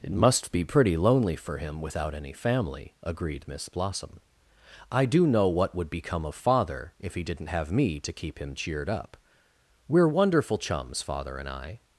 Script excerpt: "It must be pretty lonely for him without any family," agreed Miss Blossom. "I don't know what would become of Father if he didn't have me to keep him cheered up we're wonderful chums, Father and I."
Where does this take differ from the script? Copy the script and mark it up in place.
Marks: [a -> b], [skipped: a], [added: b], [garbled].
"It must be pretty lonely for him without any family," agreed Miss Blossom. "I [don't -> do] know what would become of Father if he didn't have me to keep him cheered up we're wonderful chums, Father and I."